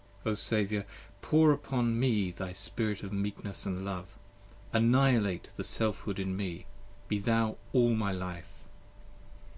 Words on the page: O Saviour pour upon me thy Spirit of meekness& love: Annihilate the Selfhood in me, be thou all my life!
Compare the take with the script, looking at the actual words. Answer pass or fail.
pass